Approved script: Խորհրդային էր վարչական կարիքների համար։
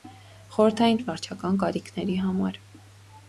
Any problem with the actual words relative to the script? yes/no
no